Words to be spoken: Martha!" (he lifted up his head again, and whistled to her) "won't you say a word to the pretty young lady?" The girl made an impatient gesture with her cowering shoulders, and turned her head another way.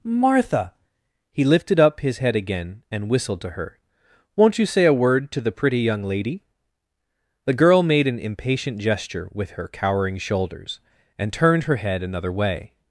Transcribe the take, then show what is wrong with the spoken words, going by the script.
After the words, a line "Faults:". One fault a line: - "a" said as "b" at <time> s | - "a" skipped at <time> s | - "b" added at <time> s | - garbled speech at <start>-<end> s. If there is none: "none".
Martha!" (he lifted up his head again, and whistled to her) "won't you say a word to the pretty young lady?" The girl made an impatient gesture with her cowering shoulders, and turned her head another way.
Faults:
none